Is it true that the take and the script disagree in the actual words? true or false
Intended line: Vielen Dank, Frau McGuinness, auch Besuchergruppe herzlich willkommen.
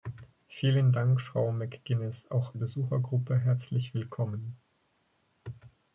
false